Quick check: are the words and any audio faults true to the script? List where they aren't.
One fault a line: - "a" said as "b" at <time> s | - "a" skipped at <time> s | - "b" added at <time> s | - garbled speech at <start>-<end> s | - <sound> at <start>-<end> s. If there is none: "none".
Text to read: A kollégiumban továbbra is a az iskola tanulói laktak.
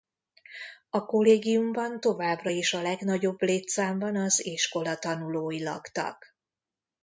- "legnagyobb létszámban" added at 2.8 s